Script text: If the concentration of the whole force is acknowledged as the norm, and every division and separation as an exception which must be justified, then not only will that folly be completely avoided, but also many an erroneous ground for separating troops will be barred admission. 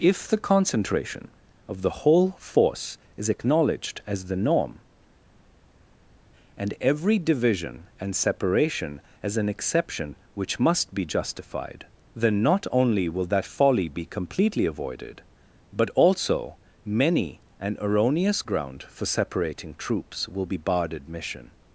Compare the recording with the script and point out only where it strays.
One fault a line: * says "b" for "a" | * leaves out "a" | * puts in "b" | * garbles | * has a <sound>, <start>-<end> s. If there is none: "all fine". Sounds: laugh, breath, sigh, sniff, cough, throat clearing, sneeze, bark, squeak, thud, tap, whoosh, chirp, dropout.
all fine